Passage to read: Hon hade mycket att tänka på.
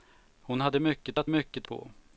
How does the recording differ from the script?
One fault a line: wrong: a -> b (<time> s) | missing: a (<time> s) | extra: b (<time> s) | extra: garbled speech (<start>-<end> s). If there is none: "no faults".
wrong: tänka -> mycket (1.3 s)